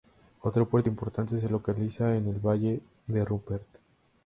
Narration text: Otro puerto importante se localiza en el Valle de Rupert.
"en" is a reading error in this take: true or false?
false